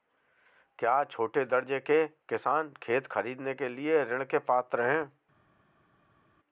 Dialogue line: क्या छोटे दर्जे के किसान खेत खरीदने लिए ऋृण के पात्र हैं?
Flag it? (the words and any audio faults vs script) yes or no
yes